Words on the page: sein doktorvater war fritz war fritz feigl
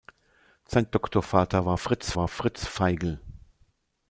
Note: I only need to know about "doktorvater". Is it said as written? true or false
true